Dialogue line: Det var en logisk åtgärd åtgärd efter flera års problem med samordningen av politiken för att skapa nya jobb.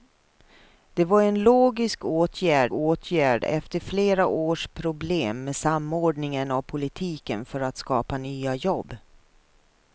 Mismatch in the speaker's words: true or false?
false